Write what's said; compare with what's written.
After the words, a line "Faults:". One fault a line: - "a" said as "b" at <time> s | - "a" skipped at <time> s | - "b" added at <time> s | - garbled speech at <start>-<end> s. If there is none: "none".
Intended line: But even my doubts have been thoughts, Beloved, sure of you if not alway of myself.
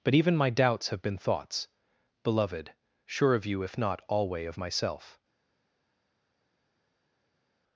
But even my doubts have been thoughts, Beloved, sure of you if not alway of myself.
Faults:
none